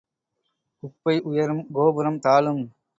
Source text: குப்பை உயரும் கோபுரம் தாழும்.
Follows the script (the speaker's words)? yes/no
yes